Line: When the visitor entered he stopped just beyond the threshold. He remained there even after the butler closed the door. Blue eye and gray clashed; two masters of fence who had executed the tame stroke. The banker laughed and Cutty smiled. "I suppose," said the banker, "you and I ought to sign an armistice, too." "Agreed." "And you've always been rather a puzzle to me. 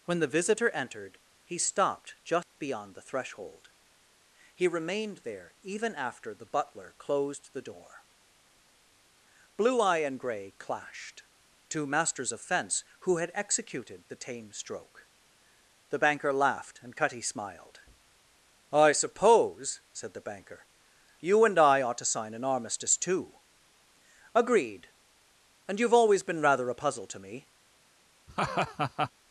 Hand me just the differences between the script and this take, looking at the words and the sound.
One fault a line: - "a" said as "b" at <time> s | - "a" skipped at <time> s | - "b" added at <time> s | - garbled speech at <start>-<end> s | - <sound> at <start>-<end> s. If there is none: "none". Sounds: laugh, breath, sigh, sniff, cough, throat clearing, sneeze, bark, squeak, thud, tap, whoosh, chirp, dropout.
- dropout at 2.4-2.6 s
- laugh at 28.3-29.1 s